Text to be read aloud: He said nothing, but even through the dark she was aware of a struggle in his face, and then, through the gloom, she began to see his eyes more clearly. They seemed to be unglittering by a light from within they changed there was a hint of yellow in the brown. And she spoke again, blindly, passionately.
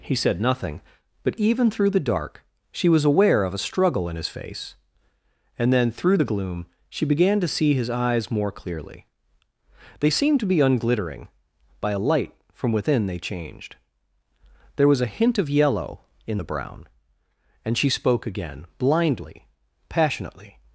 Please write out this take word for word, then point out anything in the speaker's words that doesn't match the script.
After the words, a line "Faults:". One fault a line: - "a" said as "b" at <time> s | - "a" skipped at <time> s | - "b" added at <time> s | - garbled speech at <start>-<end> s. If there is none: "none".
He said nothing, but even through the dark she was aware of a struggle in his face, and then, through the gloom, she began to see his eyes more clearly. They seemed to be unglittering by a light from within they changed there was a hint of yellow in the brown. And she spoke again, blindly, passionately.
Faults:
none